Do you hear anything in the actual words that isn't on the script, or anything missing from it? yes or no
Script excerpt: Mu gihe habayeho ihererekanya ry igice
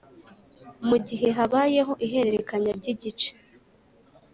no